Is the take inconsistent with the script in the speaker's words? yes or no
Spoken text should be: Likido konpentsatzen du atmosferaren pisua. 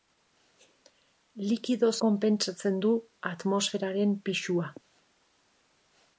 no